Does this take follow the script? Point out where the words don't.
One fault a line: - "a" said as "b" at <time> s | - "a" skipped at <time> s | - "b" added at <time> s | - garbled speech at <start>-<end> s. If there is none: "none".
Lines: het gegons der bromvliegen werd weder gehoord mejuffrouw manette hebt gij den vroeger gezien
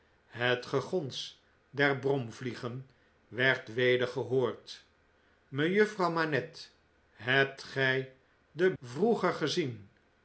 none